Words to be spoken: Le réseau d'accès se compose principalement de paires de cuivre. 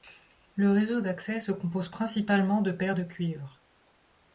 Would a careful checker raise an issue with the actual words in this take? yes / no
no